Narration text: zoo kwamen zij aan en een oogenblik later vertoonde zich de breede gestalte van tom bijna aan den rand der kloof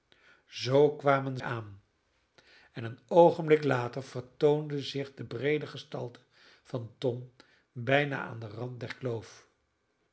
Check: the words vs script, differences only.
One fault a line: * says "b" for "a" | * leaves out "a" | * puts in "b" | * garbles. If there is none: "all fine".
* leaves out "zij"